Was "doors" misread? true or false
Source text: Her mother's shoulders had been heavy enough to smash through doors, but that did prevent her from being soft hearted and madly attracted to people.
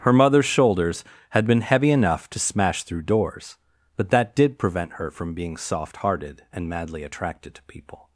false